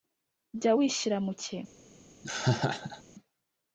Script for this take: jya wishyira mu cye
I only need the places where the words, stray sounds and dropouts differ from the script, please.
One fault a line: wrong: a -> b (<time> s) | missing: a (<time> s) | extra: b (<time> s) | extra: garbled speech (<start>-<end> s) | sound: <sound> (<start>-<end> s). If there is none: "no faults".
sound: laugh (2.2-3.0 s)